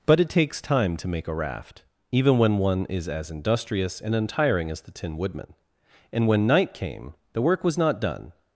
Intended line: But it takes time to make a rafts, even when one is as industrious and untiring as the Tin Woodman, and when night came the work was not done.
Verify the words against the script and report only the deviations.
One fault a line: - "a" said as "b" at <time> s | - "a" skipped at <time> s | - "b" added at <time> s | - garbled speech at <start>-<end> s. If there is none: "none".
- "rafts" said as "raft" at 1.3 s